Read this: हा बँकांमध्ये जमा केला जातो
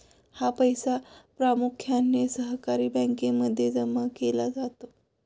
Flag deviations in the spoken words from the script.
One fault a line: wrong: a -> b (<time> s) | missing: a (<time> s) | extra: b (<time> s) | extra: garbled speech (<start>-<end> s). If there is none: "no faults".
extra: पैसा प्रामुख्याने सहकारी (0.5 s)